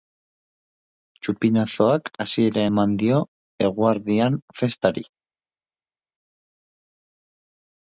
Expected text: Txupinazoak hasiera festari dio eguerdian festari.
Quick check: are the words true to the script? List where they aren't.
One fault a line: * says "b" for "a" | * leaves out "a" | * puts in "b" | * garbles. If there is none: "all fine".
* says "eman" for "festari"